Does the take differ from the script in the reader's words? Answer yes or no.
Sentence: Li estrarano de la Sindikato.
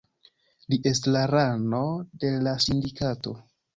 no